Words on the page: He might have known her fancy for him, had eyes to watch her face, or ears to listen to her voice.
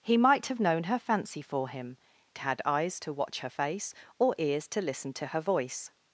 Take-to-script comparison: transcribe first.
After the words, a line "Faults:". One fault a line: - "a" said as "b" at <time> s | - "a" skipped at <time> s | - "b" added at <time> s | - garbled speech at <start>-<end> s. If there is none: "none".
He might have known her fancy for him, had eyes to watch her face, or ears to listen to her voice.
Faults:
none